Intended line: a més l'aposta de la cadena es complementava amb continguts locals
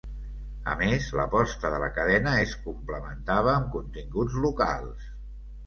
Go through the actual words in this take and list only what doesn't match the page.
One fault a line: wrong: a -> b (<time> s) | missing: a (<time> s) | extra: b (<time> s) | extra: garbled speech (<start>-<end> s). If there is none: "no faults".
no faults